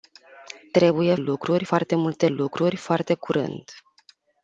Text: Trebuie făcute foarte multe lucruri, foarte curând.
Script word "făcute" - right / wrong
wrong